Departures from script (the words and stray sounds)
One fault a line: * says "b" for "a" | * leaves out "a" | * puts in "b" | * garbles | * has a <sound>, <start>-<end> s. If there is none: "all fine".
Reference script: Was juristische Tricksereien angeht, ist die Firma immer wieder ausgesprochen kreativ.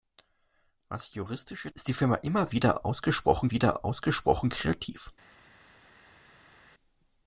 * leaves out "Tricksereien angeht"
* puts in "wieder ausgesprochen"